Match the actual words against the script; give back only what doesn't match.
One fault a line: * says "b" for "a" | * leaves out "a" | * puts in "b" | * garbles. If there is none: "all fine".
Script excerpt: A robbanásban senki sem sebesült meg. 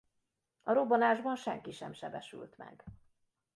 all fine